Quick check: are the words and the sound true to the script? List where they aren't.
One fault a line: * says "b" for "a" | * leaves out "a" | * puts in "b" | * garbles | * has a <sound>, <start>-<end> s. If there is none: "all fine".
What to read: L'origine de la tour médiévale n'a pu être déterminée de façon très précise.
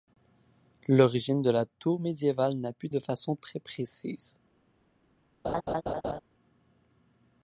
* leaves out "être déterminée"
* has a laugh, 5.4-6.2 s